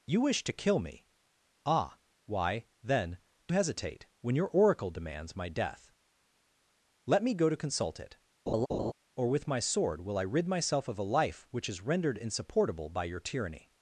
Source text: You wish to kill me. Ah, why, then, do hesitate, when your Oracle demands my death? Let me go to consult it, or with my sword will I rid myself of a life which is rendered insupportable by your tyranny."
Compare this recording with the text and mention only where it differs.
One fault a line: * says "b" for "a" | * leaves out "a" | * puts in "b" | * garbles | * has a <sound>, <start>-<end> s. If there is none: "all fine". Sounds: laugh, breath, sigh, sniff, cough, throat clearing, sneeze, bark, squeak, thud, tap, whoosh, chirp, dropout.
* has a laugh, 8.5-8.9 s